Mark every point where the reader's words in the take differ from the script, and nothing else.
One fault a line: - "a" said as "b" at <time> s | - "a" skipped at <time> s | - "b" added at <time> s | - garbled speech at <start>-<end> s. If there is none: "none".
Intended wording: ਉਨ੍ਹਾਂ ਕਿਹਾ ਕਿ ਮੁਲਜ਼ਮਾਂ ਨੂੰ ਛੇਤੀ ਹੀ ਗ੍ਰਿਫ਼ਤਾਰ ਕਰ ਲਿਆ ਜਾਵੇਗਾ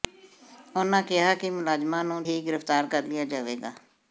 - "ਛੇਤੀ" skipped at 2.2 s